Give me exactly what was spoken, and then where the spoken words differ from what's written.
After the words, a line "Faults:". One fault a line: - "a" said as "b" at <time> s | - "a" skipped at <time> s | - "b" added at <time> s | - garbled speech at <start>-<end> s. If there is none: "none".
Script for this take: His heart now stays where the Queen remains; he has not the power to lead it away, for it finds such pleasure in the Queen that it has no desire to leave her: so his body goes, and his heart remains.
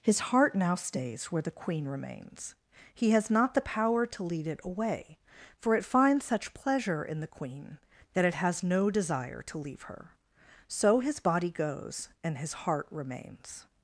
His heart now stays where the Queen remains; he has not the power to lead it away, for it finds such pleasure in the Queen that it has no desire to leave her: so his body goes, and his heart remains.
Faults:
none